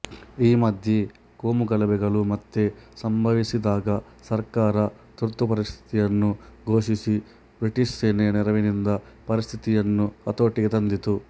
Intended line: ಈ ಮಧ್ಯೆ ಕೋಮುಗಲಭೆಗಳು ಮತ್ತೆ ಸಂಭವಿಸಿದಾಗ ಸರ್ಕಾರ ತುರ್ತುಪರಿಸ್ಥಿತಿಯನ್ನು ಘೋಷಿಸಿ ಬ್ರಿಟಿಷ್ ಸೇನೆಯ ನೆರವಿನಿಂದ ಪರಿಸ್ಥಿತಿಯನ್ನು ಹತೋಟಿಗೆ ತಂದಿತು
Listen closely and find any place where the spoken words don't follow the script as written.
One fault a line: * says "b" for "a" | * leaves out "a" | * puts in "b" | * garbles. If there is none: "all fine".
all fine